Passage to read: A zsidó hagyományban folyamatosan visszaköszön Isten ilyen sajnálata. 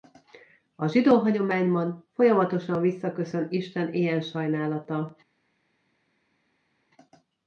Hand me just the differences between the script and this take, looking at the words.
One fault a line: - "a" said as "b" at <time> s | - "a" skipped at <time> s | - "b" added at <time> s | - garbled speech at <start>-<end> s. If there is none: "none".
none